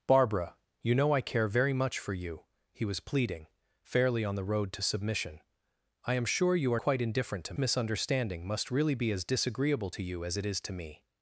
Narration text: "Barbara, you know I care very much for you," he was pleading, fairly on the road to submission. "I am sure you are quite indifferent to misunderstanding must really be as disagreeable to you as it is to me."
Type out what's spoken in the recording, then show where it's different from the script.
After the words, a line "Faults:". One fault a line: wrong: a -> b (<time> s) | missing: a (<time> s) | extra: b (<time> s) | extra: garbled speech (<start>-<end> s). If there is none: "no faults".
"Barbara, you know I care very much for you," he was pleading, fairly on the road to submission. "I am sure you are quite indifferent to misunderstanding must really be as disagreeable to you as it is to me."
Faults:
no faults